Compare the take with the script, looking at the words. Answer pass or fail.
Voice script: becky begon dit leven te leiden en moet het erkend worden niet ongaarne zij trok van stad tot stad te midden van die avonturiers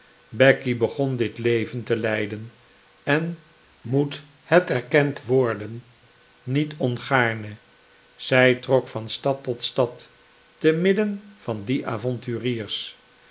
pass